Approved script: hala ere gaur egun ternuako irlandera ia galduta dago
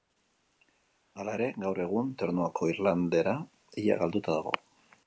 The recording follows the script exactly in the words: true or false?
true